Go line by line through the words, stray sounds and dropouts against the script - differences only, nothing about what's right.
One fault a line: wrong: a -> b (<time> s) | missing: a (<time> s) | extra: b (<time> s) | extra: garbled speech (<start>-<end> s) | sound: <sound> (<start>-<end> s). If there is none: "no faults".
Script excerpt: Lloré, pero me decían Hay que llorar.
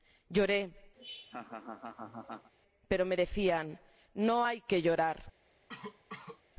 sound: laugh (1.0-2.5 s)
extra: No (4.1 s)
sound: cough (5.7-6.4 s)